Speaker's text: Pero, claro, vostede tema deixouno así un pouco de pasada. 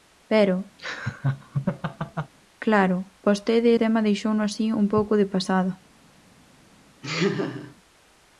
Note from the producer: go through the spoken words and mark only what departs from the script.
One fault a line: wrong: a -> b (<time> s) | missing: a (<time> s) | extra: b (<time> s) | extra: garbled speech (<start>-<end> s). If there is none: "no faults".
no faults